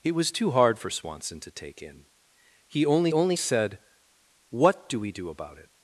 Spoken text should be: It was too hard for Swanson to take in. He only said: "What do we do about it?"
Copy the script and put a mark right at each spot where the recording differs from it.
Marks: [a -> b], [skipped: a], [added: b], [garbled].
It was too hard for Swanson to take in. He only [added: only] said: "What do we do about it?"